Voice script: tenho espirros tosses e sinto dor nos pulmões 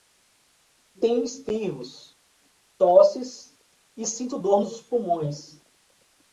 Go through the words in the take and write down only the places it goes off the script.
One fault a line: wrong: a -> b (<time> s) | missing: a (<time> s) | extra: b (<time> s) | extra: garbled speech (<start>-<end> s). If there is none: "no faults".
no faults